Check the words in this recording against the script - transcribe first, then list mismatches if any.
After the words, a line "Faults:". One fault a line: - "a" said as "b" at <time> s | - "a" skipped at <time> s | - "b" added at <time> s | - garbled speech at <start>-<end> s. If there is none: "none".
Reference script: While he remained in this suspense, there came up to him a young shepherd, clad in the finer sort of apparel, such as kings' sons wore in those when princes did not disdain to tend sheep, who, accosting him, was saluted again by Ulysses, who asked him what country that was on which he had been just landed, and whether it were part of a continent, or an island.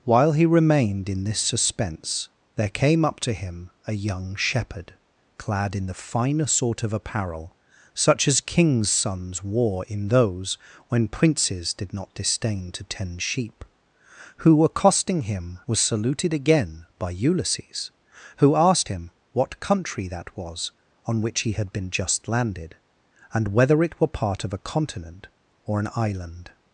While he remained in this suspense, there came up to him a young shepherd, clad in the finer sort of apparel, such as kings' sons wore in those when princes did not disdain to tend sheep, who, accosting him, was saluted again by Ulysses, who asked him what country that was on which he had been just landed, and whether it were part of a continent, or an island.
Faults:
none